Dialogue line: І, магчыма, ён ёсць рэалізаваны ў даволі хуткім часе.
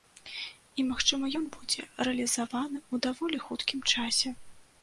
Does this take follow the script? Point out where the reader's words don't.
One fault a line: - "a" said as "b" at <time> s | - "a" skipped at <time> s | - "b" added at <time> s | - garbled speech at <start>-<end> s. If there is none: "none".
- "ёсць" said as "будзе" at 1.6 s